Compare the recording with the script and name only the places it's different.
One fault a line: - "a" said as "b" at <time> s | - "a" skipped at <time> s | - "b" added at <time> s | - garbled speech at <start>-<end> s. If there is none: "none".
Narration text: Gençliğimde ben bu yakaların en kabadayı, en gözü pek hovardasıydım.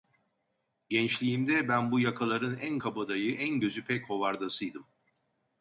none